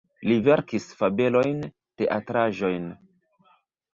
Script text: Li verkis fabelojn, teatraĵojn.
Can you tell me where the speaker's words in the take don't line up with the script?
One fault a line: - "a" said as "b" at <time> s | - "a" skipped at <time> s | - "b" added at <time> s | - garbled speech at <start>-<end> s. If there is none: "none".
none